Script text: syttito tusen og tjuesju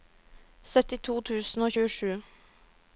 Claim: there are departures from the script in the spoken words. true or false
false